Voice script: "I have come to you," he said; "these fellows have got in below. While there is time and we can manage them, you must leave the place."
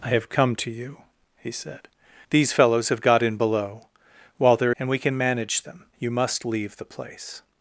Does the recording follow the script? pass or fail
fail